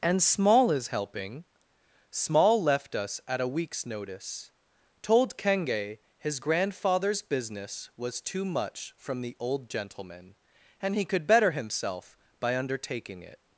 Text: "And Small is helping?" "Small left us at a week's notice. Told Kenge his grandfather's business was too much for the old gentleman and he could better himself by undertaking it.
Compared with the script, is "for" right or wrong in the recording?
wrong